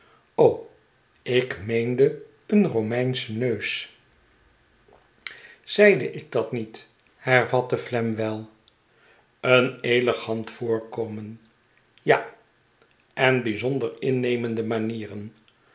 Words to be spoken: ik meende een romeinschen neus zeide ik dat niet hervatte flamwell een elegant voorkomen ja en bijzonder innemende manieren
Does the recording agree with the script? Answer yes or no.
yes